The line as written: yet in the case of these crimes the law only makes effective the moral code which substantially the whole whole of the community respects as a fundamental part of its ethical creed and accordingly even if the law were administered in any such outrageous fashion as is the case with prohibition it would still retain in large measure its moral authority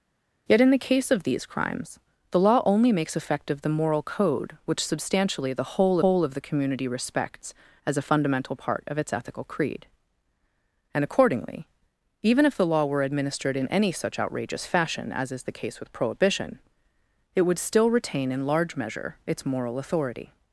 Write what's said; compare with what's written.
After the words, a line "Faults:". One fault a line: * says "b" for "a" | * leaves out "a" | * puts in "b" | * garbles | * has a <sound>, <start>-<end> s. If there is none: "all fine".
yet in the case of these crimes the law only makes effective the moral code which substantially the whole whole of the community respects as a fundamental part of its ethical creed and accordingly even if the law were administered in any such outrageous fashion as is the case with prohibition it would still retain in large measure its moral authority
Faults:
all fine